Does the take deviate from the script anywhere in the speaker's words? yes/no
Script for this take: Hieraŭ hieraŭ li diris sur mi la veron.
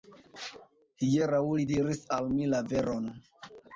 yes